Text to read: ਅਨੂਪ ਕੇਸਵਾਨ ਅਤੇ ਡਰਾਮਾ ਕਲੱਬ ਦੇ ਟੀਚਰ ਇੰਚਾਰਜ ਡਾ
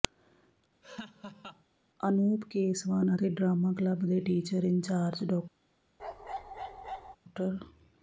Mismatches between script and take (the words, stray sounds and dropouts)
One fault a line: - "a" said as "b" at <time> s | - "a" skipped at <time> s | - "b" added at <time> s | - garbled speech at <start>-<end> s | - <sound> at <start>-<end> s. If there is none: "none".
- laugh at 0.8-1.6 s
- bark at 6.0-7.2 s